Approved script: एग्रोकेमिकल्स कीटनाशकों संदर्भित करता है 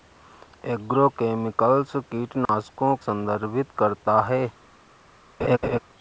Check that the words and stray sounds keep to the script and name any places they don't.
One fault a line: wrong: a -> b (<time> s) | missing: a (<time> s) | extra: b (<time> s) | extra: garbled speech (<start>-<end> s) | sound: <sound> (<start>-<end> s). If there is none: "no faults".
sound: dropout (2.5-2.5 s)
sound: laugh (5.4-5.8 s)